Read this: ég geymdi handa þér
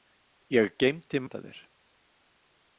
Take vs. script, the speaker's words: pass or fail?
pass